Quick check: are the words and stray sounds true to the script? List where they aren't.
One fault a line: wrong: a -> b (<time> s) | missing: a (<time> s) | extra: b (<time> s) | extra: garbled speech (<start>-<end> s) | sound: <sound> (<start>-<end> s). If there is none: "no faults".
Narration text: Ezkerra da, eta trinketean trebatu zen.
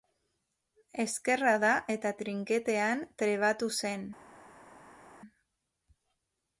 no faults